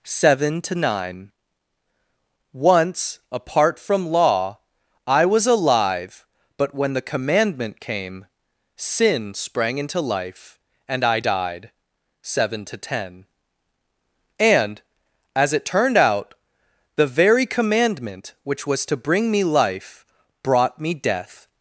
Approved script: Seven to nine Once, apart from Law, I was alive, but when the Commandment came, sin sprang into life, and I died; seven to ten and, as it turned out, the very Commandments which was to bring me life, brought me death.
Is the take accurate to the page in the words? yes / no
no